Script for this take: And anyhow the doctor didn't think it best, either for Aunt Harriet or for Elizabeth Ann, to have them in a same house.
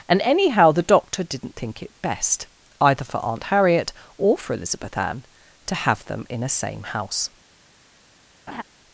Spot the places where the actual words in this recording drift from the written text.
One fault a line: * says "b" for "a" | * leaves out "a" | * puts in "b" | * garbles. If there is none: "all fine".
all fine